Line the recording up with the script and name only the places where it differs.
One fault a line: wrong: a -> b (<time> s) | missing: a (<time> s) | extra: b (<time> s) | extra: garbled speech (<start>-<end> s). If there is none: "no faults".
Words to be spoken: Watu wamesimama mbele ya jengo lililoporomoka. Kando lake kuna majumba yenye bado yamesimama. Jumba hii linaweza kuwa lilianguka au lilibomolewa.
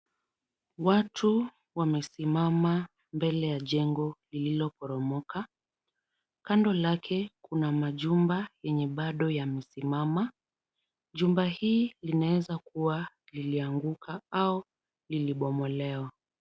no faults